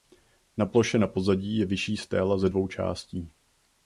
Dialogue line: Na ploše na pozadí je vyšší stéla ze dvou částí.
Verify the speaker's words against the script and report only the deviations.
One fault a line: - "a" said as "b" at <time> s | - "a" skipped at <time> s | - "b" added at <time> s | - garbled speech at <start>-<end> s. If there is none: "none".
none